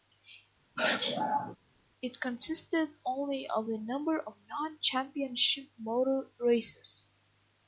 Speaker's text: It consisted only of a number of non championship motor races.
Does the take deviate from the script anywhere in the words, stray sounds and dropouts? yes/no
yes